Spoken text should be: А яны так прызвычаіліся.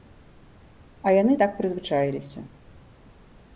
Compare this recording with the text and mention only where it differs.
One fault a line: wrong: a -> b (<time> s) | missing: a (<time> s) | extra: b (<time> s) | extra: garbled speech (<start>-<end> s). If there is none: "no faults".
no faults